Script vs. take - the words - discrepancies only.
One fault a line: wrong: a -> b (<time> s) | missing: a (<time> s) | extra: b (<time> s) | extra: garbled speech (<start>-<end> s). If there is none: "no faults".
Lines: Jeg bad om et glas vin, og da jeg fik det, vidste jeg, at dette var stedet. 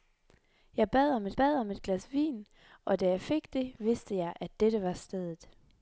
extra: bad om et (1.4 s)